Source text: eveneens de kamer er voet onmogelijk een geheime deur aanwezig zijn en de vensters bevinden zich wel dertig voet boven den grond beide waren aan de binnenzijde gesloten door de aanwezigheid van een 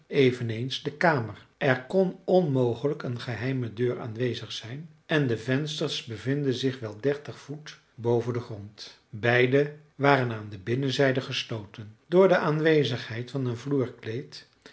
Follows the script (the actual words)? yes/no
no